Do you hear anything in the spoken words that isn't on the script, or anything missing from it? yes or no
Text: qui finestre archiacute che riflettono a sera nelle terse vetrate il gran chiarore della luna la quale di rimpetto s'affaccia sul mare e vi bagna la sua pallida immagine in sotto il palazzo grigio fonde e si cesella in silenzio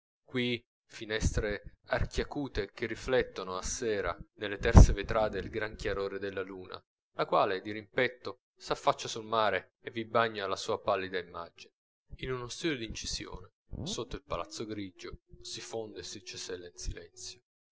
yes